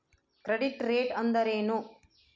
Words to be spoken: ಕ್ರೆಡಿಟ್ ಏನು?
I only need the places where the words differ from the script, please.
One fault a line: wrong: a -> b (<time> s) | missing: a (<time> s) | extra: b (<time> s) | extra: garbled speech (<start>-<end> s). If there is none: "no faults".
extra: ರೇಟ್ ಅಂದರೆ (0.8 s)